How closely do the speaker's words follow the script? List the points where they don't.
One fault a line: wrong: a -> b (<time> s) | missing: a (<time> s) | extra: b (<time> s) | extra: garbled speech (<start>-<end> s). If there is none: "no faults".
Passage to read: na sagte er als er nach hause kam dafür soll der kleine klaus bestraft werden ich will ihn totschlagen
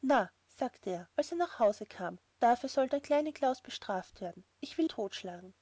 missing: ihn (4.9 s)